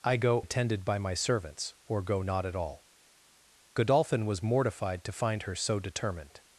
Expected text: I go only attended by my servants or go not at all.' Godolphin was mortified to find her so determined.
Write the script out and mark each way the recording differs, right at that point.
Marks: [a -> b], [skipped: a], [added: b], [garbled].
I go [skipped: only] attended by my servants or go not at all.' Godolphin was mortified to find her so determined.